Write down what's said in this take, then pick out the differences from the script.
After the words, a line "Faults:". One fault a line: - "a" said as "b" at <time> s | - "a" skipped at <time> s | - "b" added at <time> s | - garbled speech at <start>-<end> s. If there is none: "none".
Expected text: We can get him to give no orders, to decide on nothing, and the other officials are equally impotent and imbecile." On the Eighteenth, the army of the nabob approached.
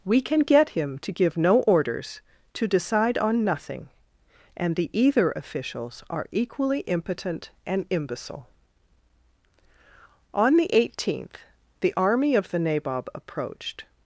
We can get him to give no orders, to decide on nothing, and the either officials are equally impotent and imbecile." On the Eighteenth, the army of the nabob approached.
Faults:
- "other" said as "either" at 5.0 s